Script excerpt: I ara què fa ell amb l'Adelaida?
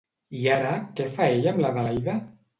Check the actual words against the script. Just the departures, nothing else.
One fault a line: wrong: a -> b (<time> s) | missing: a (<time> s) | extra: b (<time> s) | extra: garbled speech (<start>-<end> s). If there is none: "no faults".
no faults